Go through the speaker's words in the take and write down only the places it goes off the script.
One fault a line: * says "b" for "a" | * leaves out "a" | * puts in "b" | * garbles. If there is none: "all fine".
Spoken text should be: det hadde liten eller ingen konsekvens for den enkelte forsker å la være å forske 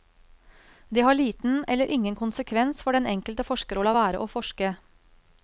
* says "har" for "hadde"